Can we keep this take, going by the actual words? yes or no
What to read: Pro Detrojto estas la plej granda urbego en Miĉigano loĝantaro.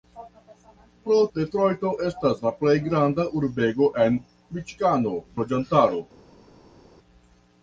yes